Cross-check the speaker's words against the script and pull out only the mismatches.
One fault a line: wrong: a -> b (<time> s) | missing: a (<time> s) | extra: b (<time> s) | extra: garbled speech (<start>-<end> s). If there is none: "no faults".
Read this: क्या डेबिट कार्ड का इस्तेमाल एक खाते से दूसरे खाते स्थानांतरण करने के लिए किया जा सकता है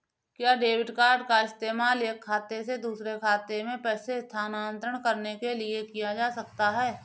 extra: में पैसे (3.6 s)